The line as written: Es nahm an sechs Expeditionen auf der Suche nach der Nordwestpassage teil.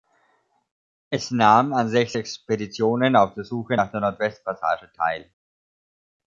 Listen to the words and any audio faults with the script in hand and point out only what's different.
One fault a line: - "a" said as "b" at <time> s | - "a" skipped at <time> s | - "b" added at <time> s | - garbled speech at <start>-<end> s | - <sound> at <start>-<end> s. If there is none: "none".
none